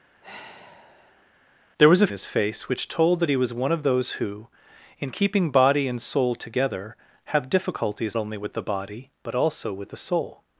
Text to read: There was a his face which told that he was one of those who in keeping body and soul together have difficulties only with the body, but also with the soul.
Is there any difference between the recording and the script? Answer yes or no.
no